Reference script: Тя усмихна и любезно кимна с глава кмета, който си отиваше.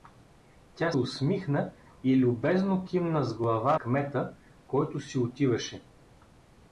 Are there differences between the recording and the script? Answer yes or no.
no